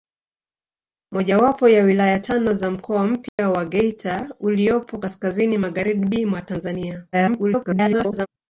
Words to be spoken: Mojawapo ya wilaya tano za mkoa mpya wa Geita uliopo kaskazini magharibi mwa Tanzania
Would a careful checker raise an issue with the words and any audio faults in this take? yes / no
yes